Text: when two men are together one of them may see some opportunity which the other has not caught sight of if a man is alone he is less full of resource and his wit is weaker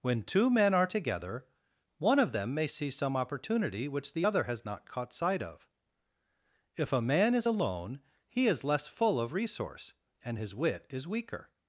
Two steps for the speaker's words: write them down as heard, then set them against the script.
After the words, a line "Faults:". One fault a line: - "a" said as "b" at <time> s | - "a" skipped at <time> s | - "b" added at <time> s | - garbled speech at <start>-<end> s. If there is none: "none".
when two men are together one of them may see some opportunity which the other has not caught sight of if a man is alone he is less full of resource and his wit is weaker
Faults:
none